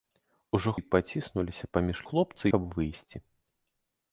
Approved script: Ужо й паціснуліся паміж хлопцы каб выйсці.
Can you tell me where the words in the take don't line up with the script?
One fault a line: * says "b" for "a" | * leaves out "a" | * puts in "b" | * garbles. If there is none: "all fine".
all fine